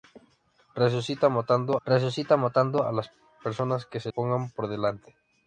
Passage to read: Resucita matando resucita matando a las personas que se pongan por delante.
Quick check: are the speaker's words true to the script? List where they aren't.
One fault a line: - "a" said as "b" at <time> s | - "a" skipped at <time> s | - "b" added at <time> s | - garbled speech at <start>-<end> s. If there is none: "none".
none